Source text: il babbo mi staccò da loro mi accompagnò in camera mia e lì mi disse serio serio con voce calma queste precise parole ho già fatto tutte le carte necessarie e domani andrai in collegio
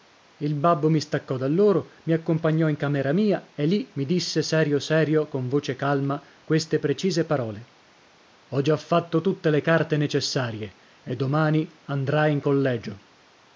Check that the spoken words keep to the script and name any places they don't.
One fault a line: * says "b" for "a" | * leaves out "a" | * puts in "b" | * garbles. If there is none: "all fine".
all fine